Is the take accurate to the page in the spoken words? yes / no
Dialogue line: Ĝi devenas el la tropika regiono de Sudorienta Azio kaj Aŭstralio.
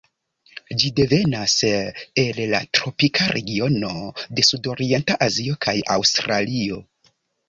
yes